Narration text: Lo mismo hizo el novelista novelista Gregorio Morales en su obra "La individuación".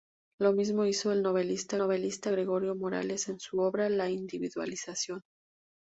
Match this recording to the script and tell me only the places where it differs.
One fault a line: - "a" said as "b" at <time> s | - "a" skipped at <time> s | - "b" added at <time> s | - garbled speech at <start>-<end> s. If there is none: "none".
none